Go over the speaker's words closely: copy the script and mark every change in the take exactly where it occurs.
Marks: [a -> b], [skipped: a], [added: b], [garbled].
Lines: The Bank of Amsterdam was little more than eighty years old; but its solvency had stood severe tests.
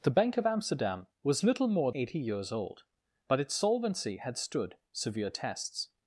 The Bank of Amsterdam was little more [skipped: than] eighty years old; but its solvency had stood severe tests.